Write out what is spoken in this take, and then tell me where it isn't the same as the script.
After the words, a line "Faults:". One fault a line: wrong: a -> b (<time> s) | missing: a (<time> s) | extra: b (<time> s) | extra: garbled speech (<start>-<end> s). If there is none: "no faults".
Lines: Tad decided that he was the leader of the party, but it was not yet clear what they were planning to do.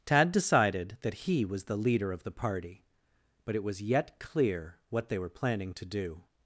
Tad decided that he was the leader of the party, but it was yet clear what they were planning to do.
Faults:
missing: not (3.8 s)